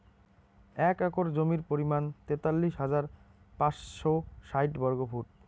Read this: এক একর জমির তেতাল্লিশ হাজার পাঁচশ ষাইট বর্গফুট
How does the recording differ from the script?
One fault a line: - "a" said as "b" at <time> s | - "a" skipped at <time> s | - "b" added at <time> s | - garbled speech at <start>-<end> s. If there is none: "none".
- "পরিমাণ" added at 1.7 s